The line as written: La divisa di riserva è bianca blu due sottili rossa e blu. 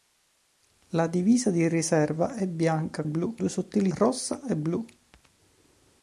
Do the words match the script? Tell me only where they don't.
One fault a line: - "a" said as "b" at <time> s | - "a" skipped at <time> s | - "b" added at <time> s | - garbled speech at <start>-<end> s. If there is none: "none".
none